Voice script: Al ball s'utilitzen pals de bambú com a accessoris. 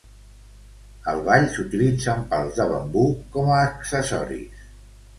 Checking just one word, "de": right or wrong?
right